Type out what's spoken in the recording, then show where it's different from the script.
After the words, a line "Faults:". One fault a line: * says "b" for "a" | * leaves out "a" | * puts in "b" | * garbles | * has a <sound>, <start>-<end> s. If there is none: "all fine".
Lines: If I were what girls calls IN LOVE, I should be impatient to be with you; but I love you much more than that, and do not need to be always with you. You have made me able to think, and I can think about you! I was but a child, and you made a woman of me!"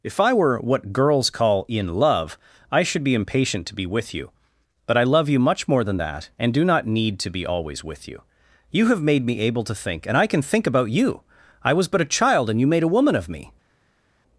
If I were what girls call IN LOVE, I should be impatient to be with you; but I love you much more than that, and do not need to be always with you. You have made me able to think, and I can think about you! I was but a child, and you made a woman of me!"
Faults:
* says "call" for "calls"